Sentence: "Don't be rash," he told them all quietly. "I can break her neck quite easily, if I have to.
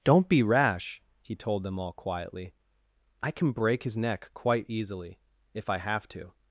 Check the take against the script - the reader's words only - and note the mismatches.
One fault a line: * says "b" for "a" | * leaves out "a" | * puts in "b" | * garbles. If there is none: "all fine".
* says "his" for "her"